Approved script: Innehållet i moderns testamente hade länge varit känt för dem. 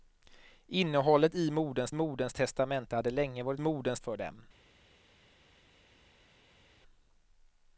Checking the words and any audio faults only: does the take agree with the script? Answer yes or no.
no